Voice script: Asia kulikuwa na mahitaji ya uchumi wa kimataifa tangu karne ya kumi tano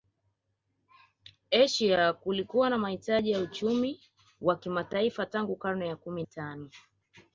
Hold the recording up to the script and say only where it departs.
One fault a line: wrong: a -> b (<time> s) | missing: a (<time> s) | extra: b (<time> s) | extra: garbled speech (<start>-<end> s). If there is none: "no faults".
no faults